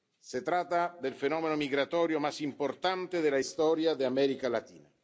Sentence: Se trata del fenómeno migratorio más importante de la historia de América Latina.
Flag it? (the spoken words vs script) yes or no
no